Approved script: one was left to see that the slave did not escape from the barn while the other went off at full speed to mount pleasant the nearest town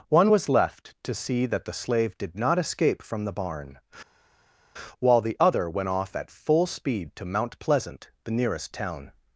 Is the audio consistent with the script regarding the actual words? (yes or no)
yes